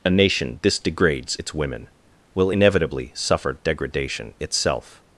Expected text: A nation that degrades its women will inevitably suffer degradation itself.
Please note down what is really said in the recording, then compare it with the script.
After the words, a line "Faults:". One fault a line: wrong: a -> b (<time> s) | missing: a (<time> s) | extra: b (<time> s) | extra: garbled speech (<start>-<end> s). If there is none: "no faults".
A nation this degrades its women will inevitably suffer degradation itself.
Faults:
wrong: that -> this (0.6 s)